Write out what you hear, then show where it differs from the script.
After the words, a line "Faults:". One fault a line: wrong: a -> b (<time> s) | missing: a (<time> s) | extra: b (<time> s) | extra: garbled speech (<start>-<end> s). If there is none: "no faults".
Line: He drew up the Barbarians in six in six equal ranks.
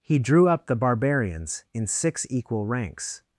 He drew up the Barbarians in six equal ranks.
Faults:
missing: in six (2.3 s)